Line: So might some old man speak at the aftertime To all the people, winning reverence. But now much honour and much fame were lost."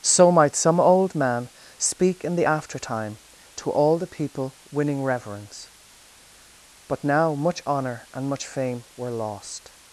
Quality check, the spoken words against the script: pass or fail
fail